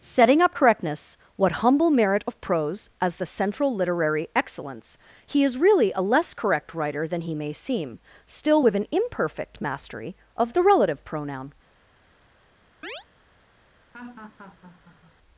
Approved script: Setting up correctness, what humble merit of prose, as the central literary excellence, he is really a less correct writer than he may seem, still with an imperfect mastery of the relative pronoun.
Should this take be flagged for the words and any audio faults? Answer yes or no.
yes